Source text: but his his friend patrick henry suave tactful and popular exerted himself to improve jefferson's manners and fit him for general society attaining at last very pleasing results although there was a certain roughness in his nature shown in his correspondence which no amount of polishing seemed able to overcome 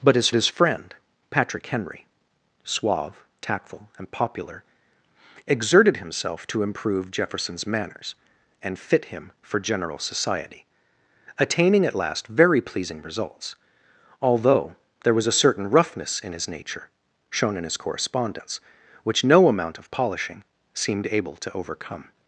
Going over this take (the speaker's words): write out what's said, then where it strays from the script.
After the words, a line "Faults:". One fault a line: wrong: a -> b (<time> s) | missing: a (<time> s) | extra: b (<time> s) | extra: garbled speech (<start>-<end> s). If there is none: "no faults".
but his his friend patrick henry suave tactful and popular exerted himself to improve jefferson's manners and fit him for general society attaining at last very pleasing results although there was a certain roughness in his nature shown in his correspondence which no amount of polishing seemed able to overcome
Faults:
no faults